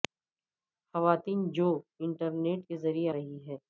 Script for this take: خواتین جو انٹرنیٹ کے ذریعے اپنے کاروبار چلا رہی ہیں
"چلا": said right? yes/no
no